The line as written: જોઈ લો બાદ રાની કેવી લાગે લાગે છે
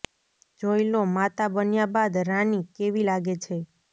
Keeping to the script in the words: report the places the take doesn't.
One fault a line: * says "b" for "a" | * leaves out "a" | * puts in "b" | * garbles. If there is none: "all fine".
* puts in "માતા બન્યા"
* leaves out "લાગે"